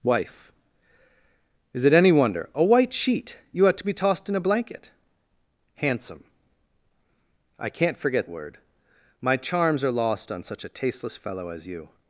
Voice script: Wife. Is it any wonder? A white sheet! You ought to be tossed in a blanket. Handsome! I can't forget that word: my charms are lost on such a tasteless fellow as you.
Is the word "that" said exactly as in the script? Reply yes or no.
no